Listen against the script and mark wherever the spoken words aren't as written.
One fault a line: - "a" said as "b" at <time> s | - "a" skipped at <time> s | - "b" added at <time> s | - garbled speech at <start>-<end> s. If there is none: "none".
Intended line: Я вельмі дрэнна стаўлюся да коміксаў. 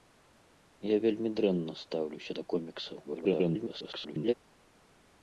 - garbled speech at 3.0-4.3 s